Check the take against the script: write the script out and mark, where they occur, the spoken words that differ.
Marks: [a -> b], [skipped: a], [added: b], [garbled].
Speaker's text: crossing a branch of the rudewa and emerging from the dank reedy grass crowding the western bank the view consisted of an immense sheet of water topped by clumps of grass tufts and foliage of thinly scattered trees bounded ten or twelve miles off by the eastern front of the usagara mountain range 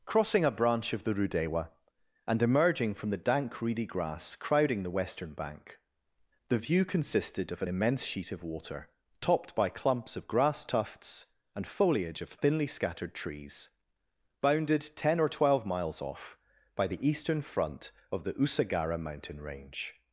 crossing a branch of the rudewa and emerging from the dank reedy grass crowding the western bank the view consisted of an immense sheet of water topped by clumps of grass tufts and foliage of thinly scattered trees bounded ten or twelve miles off by the eastern front of the usagara mountain range